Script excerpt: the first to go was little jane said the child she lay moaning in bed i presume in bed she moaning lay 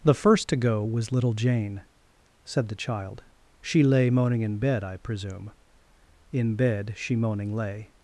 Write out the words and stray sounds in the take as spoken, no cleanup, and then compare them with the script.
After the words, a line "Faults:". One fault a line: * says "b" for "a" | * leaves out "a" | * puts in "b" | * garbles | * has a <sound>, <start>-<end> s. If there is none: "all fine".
the first to go was little jane said the child she lay moaning in bed i presume in bed she moaning lay
Faults:
all fine